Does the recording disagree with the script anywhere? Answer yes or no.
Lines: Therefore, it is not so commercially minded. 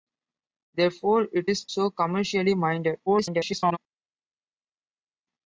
yes